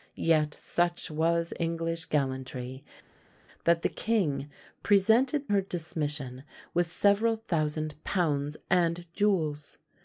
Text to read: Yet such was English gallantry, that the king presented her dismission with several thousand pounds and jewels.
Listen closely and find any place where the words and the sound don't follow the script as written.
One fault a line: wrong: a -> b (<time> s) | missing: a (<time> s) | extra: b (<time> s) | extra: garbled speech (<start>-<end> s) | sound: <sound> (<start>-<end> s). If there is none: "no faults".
no faults